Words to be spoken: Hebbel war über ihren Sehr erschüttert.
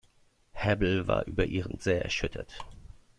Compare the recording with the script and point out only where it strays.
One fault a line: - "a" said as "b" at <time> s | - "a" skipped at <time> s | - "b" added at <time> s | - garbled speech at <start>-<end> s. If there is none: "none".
none